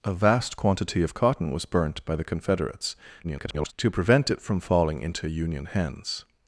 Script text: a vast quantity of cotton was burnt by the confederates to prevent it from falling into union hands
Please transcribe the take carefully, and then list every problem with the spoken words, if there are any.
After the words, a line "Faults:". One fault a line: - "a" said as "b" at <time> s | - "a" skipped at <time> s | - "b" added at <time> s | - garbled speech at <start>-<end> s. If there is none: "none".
a vast quantity of cotton was burnt by the confederates [garbled] to prevent it from falling into union hands
Faults:
- garbled speech at 3.2-3.7 s